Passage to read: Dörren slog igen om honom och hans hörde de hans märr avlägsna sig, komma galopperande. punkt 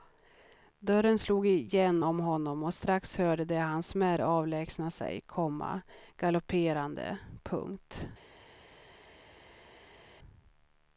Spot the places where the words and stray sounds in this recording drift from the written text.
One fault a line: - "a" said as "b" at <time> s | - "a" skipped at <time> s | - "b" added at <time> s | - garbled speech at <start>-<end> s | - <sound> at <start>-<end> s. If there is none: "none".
- "hans" said as "strax" at 2.7 s